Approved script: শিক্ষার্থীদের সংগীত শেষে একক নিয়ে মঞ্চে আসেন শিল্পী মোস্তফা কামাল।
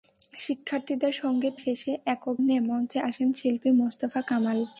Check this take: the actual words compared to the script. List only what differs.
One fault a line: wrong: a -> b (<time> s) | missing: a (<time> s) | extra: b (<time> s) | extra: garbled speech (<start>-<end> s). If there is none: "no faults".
no faults